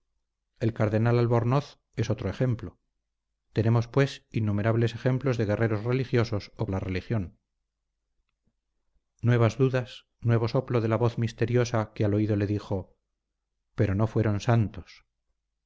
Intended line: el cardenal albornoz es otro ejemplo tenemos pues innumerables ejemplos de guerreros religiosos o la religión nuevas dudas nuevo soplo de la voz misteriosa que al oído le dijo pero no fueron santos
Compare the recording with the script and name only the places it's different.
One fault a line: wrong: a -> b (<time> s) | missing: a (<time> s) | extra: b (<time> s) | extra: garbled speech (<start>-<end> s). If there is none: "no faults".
no faults